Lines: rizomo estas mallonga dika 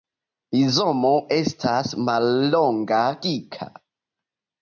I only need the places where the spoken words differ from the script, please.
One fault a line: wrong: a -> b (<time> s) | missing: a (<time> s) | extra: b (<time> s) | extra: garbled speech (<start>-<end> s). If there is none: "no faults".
no faults